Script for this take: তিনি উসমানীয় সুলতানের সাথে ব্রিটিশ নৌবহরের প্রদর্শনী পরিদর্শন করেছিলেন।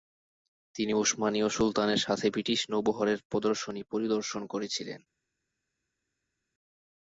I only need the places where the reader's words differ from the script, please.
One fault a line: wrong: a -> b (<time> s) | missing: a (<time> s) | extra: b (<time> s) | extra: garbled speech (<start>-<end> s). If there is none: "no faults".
no faults